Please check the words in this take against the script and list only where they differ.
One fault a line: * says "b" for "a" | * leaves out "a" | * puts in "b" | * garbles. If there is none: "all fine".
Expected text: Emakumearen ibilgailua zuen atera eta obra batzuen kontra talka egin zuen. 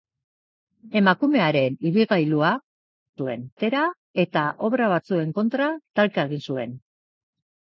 all fine